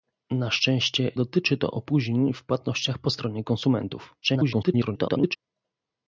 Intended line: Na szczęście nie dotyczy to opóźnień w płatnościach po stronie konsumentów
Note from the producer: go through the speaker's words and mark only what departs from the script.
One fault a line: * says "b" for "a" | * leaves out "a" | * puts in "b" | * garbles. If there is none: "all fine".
* leaves out "nie"
* garbles